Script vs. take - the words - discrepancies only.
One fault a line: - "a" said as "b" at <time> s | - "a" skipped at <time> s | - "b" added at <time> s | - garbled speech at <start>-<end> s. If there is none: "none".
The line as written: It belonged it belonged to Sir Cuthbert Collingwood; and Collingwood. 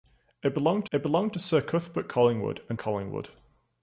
none